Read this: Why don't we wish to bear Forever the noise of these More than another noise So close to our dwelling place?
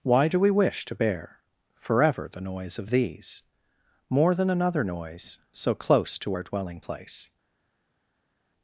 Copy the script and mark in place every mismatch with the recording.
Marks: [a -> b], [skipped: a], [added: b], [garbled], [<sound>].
Why [don't -> do] we wish to bear Forever the noise of these More than another noise So close to our dwelling place?